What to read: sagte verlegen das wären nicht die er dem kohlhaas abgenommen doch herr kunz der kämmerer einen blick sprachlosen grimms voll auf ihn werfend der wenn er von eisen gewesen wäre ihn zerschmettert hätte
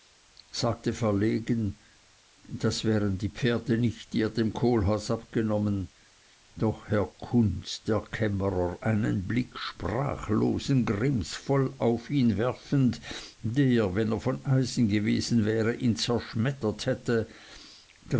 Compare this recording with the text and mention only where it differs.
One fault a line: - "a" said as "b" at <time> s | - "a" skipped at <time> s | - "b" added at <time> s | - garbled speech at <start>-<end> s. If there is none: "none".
- "die pferde" added at 3.2 s